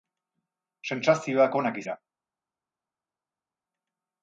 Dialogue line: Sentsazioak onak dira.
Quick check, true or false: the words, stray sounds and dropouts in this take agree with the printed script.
true